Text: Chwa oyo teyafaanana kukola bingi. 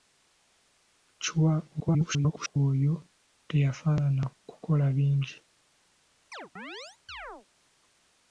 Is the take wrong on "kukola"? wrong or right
right